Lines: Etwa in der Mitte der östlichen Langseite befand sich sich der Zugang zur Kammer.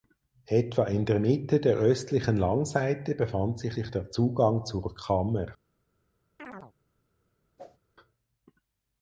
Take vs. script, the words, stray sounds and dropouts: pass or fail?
fail